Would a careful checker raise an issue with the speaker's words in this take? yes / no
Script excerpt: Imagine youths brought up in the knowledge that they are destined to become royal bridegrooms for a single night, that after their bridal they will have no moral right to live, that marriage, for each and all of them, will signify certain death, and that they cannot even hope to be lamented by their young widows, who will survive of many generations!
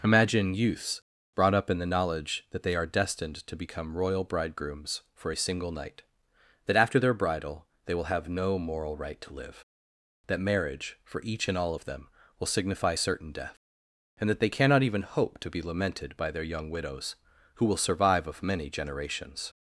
no